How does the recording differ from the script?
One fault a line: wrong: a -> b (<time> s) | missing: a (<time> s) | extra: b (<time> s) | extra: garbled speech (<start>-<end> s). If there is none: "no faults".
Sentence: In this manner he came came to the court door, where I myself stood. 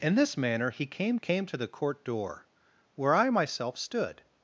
no faults